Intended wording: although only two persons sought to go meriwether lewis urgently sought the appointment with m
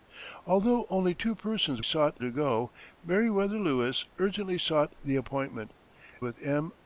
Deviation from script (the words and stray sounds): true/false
false